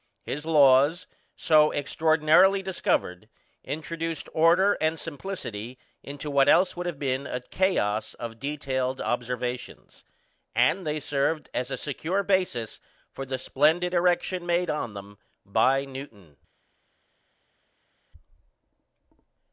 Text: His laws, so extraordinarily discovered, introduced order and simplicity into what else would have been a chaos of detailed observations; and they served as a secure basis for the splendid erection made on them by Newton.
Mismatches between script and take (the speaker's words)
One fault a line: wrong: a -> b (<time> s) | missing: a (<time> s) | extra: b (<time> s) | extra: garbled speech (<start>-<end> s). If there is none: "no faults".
no faults